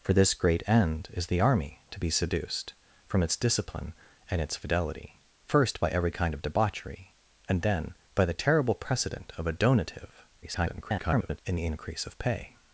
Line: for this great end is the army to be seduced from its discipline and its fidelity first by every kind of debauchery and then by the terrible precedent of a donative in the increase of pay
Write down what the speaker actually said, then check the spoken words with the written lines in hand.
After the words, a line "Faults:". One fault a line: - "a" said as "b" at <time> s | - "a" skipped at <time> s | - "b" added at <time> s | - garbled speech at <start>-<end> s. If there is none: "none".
for this great end is the army to be seduced from its discipline and its fidelity first by every kind of debauchery and then by the terrible precedent of a donative [garbled] in the increase of pay
Faults:
- garbled speech at 10.4-11.4 s